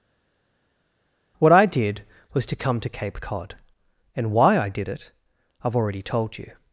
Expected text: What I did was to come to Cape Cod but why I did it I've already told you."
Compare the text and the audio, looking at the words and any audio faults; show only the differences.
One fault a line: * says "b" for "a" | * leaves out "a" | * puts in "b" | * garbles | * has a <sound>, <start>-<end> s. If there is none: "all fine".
* says "and" for "but"